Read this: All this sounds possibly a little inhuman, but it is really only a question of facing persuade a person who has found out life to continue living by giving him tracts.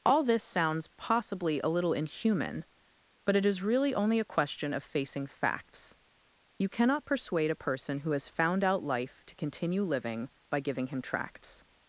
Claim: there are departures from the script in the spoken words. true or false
true